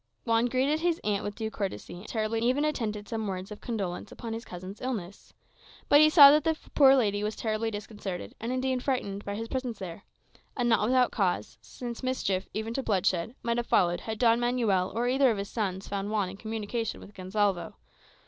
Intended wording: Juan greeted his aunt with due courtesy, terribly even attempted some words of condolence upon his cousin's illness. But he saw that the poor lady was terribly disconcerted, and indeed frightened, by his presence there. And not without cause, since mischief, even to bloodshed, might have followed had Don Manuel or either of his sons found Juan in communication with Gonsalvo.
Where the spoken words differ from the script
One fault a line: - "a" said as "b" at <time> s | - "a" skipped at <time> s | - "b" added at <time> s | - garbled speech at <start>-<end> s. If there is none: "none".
none